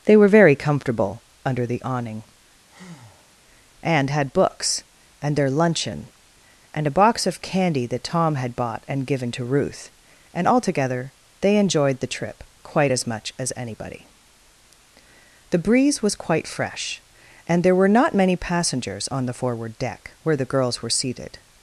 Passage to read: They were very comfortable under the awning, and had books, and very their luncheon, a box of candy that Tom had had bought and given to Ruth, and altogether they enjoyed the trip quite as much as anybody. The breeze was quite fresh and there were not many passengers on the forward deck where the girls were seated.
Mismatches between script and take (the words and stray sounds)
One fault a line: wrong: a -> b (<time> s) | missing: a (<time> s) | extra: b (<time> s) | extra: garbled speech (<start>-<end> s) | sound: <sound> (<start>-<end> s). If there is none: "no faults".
sound: breath (2.7-3.4 s)
missing: very (5.4 s)
extra: and (6.7 s)
missing: had (8.6 s)